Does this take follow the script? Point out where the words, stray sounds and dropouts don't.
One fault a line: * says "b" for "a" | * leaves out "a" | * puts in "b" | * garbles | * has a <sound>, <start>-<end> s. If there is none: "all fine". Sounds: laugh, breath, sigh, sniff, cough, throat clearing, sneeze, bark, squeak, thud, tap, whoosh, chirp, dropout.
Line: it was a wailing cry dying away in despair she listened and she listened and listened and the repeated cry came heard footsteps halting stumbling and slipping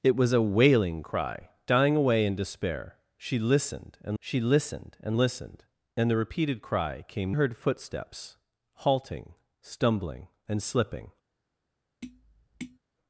* has a tap, 12.0-12.8 s